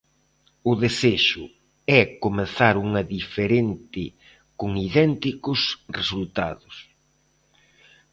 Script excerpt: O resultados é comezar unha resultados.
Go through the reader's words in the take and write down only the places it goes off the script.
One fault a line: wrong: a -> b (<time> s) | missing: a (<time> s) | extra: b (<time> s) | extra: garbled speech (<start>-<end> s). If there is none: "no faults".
wrong: resultados -> desexo (0.8 s)
extra: diferente con idénticos (3.1 s)